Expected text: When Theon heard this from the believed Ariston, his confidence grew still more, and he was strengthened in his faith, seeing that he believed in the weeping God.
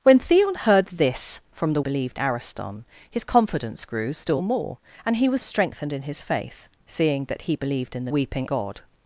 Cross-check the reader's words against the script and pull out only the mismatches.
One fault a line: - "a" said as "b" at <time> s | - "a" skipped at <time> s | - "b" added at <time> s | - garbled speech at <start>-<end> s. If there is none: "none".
none